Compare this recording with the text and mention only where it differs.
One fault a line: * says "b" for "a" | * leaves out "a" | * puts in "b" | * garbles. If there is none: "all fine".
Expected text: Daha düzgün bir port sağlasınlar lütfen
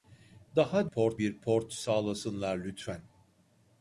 * says "port" for "düzgün"